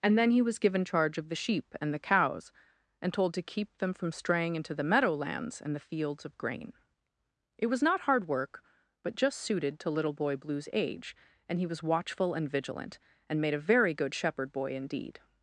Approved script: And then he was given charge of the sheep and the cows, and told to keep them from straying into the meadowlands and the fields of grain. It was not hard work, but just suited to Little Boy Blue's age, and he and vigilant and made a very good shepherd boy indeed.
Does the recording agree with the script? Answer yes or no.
no